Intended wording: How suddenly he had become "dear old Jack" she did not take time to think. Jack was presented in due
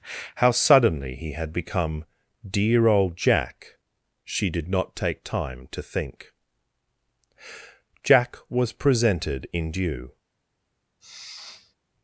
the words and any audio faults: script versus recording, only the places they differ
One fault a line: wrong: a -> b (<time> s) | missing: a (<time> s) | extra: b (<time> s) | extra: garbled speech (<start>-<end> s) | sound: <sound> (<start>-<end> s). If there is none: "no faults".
sound: sniff (11.0-11.7 s)